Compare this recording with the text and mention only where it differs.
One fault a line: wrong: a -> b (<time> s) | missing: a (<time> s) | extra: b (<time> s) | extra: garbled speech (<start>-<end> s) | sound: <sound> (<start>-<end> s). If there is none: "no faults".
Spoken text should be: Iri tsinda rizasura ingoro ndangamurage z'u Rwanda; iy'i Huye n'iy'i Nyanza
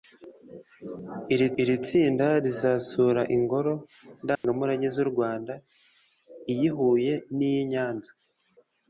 extra: iri (1.6 s)
sound: dropout (4.4-4.4 s)